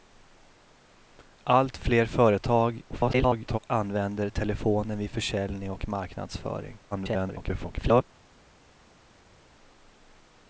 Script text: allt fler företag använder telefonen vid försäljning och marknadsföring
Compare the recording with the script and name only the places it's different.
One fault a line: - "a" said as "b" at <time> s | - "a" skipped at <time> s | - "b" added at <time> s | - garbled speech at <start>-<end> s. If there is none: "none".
- garbled speech at 2.9-3.6 s
- garbled speech at 6.9-8.0 s